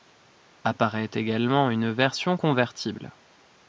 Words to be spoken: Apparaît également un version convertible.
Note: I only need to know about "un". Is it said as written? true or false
false